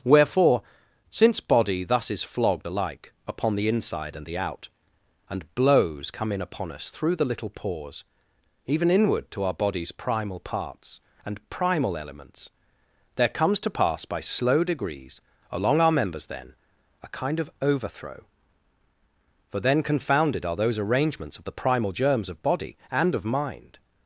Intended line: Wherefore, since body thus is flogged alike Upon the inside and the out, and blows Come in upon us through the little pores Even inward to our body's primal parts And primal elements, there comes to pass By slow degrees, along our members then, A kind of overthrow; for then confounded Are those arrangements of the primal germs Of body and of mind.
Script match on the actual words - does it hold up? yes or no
yes